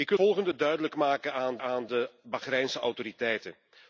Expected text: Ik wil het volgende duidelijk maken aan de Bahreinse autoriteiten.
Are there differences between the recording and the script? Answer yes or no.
yes